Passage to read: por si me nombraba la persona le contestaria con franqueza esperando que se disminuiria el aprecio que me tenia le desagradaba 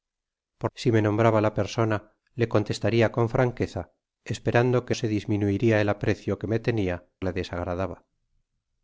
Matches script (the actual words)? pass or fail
pass